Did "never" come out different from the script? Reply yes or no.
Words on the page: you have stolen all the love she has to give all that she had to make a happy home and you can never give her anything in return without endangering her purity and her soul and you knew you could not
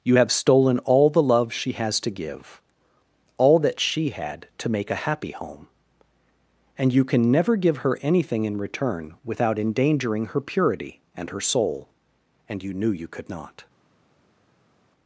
no